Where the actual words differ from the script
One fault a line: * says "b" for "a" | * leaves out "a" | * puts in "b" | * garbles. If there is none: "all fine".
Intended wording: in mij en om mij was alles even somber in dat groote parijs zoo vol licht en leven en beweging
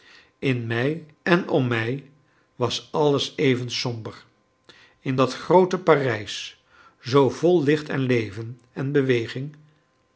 all fine